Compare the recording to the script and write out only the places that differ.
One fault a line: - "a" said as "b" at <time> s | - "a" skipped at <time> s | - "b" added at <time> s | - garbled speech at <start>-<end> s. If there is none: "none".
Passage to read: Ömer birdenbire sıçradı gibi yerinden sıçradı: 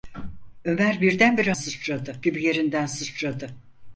none